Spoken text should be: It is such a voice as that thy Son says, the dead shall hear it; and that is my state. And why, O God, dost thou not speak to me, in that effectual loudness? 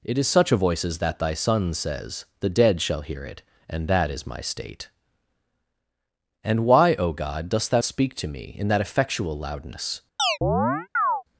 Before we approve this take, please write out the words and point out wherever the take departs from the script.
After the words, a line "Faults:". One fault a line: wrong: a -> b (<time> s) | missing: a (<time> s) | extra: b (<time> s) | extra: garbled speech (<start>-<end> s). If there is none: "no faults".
It is such a voice as that thy Son says, the dead shall hear it; and that is my state. And why, O God, dost thou speak to me, in that effectual loudness?
Faults:
missing: not (7.8 s)